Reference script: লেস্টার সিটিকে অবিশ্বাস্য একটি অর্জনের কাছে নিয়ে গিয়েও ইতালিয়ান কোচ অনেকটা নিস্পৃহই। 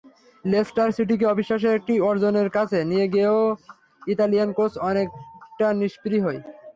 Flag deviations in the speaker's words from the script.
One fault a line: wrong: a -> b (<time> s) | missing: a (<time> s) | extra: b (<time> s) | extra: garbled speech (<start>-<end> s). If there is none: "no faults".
no faults